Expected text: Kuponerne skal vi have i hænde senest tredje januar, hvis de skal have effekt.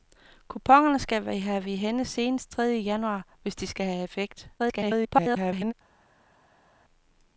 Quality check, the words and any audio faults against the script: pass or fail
fail